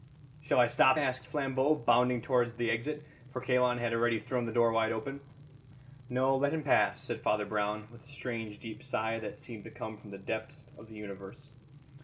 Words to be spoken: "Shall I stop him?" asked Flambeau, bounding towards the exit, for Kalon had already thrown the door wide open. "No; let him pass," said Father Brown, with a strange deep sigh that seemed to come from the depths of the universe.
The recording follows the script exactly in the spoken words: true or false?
false